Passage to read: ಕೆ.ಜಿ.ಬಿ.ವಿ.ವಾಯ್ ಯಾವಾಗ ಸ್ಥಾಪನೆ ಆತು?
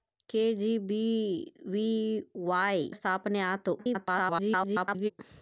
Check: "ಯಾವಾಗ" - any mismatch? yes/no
yes